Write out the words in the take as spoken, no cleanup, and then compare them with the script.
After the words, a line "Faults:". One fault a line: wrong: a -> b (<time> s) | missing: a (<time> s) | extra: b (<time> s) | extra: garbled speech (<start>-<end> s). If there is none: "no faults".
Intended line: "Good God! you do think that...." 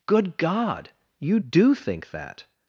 "Good God! you do think that...."
Faults:
no faults